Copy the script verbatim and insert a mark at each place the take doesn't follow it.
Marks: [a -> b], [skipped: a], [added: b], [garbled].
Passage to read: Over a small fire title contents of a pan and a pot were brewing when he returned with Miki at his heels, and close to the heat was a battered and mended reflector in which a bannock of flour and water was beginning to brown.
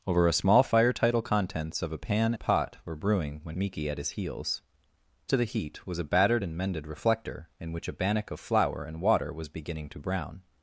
Over a small fire title contents of a pan [skipped: and] a pot were brewing when [skipped: he returned with] Miki at his heels, [skipped: and close] to the heat was a battered and mended reflector in which a bannock of flour and water was beginning to brown.